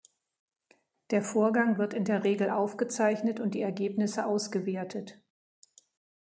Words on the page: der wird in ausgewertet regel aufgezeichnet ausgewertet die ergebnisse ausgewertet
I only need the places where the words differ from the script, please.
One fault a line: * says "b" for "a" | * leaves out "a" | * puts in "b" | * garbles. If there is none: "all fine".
* puts in "vorgang"
* says "der" for "ausgewertet"
* says "und" for "ausgewertet"